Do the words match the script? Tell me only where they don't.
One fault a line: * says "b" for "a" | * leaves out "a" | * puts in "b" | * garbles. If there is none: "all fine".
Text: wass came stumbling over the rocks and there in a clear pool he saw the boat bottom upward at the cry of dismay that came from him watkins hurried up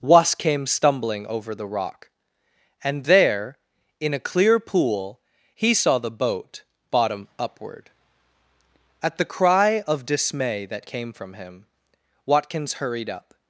* says "rock" for "rocks"